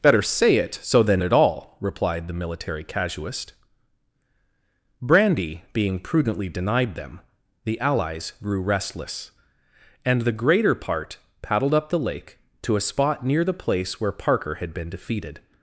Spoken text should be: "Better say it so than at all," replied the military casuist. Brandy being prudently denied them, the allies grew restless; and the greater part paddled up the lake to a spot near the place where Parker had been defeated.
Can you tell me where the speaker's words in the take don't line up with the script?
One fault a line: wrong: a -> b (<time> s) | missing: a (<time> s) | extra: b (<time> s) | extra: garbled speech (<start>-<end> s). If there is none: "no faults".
no faults